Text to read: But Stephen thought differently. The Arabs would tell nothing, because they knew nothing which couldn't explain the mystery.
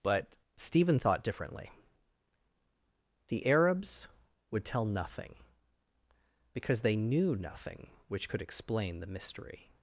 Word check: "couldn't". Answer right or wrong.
wrong